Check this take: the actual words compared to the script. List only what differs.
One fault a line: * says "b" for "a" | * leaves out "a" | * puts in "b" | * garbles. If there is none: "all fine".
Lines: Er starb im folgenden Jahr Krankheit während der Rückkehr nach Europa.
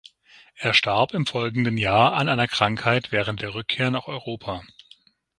* puts in "an einer"